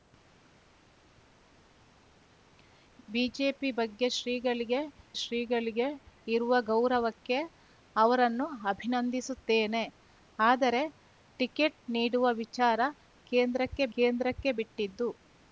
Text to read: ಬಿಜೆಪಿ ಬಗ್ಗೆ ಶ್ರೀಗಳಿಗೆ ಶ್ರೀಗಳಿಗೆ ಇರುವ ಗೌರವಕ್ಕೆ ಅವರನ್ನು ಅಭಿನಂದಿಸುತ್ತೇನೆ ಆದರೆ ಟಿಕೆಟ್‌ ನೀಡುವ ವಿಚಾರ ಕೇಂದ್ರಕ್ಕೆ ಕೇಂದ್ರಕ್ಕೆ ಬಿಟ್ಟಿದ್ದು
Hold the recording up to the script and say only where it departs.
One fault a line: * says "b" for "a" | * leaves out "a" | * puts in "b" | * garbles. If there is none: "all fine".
all fine